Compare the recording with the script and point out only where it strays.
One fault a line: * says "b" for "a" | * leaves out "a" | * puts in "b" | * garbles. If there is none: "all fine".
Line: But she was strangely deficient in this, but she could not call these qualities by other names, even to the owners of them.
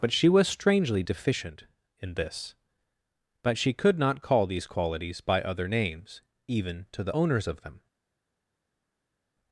all fine